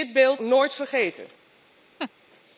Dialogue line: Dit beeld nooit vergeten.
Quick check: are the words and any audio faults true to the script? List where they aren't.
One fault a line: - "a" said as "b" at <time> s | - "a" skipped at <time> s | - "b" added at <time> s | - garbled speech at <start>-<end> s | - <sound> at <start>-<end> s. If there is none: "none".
- laugh at 2.0-2.1 s